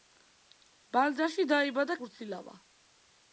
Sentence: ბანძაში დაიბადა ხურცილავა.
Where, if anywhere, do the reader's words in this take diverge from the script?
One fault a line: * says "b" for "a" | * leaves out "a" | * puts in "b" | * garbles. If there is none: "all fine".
all fine